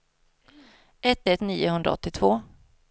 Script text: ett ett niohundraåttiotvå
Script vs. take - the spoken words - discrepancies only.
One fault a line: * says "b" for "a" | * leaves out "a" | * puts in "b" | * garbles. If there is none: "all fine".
all fine